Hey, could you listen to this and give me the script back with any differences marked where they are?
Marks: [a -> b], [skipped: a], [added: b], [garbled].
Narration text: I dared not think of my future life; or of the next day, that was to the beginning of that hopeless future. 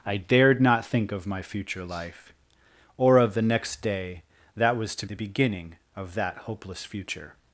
I dared not think of my future life; or of the next day, that was to the beginning of that hopeless future.